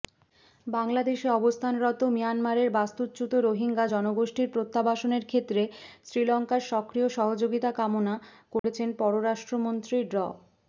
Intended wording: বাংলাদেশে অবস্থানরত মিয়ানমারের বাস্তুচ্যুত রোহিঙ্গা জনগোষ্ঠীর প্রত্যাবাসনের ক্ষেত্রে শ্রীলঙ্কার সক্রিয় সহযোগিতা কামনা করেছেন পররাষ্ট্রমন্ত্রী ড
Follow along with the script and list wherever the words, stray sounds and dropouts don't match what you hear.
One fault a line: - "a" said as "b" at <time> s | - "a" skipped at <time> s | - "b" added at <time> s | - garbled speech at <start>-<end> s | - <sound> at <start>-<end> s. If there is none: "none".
- dropout at 8.6-8.6 s